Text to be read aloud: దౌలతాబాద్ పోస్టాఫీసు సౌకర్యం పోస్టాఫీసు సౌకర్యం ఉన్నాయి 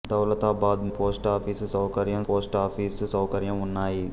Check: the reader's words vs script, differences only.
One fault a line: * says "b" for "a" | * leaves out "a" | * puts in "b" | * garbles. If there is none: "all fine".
all fine